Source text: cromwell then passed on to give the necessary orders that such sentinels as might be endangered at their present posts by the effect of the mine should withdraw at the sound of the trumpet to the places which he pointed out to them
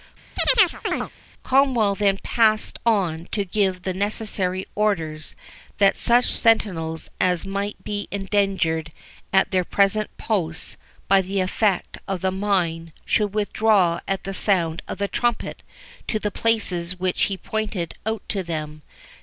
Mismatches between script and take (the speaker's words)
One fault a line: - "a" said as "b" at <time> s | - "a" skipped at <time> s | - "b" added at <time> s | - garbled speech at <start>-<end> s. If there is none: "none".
none